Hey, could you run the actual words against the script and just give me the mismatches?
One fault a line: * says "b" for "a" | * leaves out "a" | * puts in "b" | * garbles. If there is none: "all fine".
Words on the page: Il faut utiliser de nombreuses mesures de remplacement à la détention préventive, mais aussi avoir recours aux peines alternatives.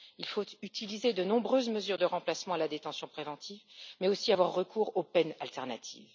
all fine